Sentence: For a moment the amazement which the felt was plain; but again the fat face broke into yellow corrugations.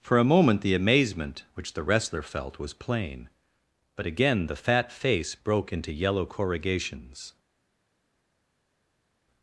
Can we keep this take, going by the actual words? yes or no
no